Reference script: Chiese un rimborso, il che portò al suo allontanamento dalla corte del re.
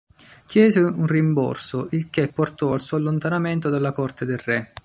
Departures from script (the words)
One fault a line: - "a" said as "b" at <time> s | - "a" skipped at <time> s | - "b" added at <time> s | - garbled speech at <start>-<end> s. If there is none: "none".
none